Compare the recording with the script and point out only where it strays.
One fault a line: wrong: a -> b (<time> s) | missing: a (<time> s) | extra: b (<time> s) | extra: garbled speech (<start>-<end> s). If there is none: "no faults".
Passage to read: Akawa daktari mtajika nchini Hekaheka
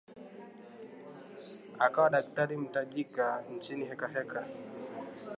no faults